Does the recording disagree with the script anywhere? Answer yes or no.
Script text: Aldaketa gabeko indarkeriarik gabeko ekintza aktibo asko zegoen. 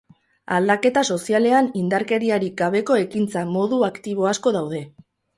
yes